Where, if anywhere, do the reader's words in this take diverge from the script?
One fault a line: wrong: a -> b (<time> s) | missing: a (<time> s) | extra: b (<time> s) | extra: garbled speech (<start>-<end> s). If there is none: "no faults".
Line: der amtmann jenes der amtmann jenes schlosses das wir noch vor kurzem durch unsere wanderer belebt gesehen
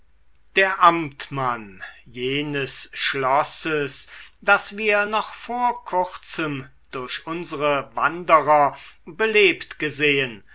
missing: der amtmann jenes (2.9 s)